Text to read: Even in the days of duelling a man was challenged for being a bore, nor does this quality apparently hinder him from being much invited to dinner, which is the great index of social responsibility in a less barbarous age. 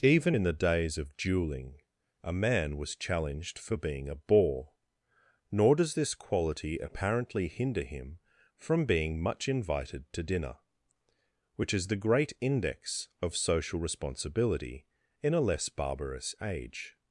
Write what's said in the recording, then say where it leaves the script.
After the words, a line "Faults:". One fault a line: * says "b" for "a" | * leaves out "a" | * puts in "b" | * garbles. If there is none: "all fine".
Even in the days of duelling a man was challenged for being a bore, nor does this quality apparently hinder him from being much invited to dinner, which is the great index of social responsibility in a less barbarous age.
Faults:
all fine